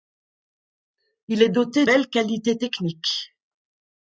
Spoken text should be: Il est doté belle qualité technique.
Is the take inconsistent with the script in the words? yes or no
no